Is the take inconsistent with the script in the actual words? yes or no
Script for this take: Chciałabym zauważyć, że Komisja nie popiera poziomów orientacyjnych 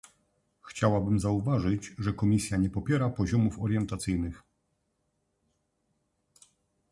no